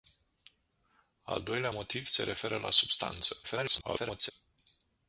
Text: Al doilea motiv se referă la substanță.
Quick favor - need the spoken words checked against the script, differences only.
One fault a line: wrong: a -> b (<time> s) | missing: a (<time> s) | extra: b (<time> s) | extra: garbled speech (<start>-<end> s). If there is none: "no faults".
extra: garbled speech (3.4-4.3 s)